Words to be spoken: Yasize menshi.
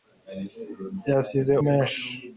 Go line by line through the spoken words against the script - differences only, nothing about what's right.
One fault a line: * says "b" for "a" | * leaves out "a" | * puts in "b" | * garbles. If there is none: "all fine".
all fine